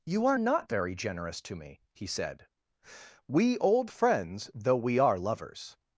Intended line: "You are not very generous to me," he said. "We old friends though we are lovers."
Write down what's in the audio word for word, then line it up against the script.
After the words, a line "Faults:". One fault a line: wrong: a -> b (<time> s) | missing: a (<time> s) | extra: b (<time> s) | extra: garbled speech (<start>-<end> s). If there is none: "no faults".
"You are not very generous to me," he said. "We old friends though we are lovers."
Faults:
no faults